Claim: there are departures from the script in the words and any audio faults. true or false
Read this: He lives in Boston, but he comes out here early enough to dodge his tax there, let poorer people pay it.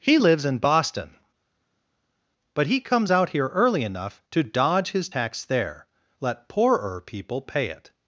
false